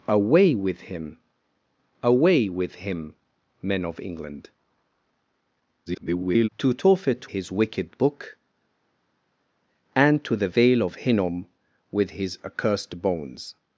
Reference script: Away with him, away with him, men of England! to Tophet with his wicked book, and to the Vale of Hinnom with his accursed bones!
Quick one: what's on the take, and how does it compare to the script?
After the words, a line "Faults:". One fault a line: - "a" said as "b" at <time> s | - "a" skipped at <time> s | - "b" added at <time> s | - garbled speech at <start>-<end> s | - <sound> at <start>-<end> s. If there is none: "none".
Away with him, away with him, men of England! [garbled] to Tophet his wicked book, and to the Vale of Hinnom with his accursed bones!
Faults:
- garbled speech at 5.9-6.5 s
- "with" skipped at 7.3 s